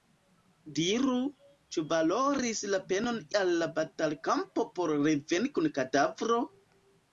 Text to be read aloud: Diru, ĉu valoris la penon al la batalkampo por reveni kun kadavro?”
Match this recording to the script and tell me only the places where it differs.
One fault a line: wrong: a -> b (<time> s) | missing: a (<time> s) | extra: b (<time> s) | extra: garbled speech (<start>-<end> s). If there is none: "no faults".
no faults